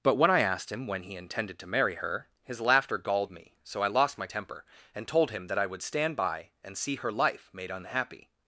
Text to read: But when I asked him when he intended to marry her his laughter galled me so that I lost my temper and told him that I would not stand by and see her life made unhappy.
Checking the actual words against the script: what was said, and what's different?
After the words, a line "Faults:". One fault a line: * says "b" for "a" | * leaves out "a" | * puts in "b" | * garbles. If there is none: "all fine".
But when I asked him when he intended to marry her his laughter galled me so I lost my temper and told him that I would stand by and see her life made unhappy.
Faults:
* leaves out "that"
* leaves out "not"